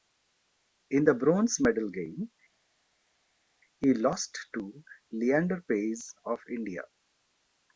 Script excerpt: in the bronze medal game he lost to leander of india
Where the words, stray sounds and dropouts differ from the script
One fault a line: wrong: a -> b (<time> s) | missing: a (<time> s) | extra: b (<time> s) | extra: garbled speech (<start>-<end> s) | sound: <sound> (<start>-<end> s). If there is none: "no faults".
extra: paes (5.7 s)